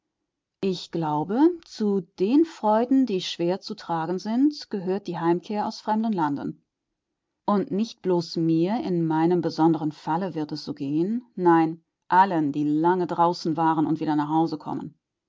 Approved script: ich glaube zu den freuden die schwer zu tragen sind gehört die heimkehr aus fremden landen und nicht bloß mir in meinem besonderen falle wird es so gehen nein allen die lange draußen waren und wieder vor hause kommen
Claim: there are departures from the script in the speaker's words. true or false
true